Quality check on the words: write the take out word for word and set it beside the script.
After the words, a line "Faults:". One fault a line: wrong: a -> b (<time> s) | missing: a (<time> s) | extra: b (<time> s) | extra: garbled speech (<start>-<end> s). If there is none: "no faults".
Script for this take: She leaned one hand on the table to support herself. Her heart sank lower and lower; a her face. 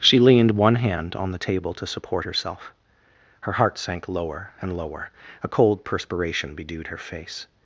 She leaned one hand on the table to support herself. Her heart sank lower and lower; a cold perspiration bedewed her face.
Faults:
extra: cold perspiration bedewed (5.5 s)